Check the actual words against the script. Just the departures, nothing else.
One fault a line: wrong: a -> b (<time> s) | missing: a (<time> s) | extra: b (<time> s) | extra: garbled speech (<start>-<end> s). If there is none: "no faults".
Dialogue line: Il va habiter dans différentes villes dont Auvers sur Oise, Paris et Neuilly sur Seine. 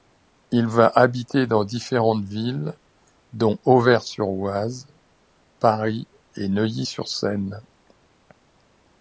no faults